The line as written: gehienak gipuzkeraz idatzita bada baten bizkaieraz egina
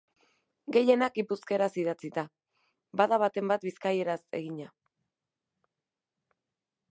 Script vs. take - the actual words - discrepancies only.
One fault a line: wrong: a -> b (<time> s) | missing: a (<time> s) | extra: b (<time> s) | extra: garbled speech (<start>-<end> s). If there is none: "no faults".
extra: bat (3.5 s)